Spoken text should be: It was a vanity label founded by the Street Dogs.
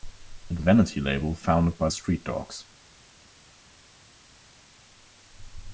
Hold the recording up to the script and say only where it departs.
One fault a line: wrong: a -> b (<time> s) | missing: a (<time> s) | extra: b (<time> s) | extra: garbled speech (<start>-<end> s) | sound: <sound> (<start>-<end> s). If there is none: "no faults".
missing: was (0.6 s)
missing: the (1.9 s)